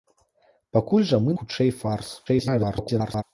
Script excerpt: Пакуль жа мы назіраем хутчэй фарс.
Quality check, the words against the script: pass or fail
fail